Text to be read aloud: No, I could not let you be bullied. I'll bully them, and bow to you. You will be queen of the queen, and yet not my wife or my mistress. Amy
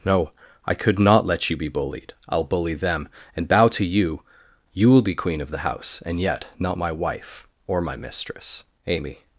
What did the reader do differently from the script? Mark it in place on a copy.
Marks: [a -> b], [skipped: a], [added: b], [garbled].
No, I could not let you be bullied. I'll bully them, and bow to you. You will be queen of the [queen, -> house] and yet not my wife or my mistress. Amy